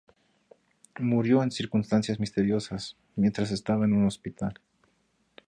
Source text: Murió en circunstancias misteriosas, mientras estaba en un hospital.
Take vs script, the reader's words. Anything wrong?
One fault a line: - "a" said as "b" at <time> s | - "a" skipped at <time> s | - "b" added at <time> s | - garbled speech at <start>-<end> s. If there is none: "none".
none